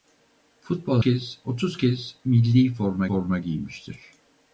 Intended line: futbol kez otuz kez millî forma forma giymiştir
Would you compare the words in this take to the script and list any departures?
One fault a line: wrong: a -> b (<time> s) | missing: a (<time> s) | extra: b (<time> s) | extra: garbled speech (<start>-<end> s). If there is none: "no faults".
no faults